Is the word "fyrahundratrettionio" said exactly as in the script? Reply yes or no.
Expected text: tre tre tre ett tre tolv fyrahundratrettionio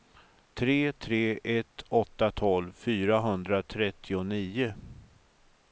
yes